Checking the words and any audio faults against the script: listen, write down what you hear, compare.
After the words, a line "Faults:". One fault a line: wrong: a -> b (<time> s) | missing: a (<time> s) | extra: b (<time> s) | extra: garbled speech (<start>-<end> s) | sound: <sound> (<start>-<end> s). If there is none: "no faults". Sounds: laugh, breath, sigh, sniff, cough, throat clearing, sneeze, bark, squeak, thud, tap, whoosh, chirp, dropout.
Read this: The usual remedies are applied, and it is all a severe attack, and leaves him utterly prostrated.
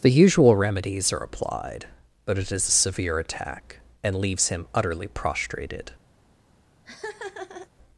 The usual remedies are applied, but it is a severe attack, and leaves him utterly prostrated.
Faults:
wrong: and -> but (2.2 s)
missing: all (2.7 s)
sound: laugh (6.8-7.7 s)